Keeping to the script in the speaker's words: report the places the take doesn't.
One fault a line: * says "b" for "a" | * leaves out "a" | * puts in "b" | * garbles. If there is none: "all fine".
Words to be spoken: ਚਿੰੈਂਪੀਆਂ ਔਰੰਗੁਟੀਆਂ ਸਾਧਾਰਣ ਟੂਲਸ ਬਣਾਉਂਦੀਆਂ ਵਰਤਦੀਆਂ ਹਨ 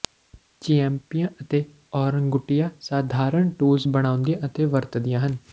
* puts in "ਅਤੇ"
* puts in "ਅਤੇ"